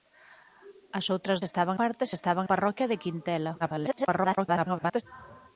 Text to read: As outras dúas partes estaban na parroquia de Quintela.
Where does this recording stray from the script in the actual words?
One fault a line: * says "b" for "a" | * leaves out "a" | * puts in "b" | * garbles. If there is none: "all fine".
* says "estaban" for "dúas"
* leaves out "na"
* garbles